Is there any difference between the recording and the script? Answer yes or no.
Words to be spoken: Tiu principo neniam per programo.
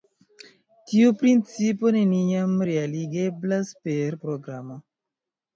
yes